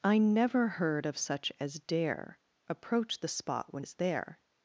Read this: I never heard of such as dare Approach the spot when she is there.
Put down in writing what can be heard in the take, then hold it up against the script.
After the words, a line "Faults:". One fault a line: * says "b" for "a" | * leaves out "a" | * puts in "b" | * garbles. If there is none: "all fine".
I never heard of such as dare Approach the spot when is there.
Faults:
* leaves out "she"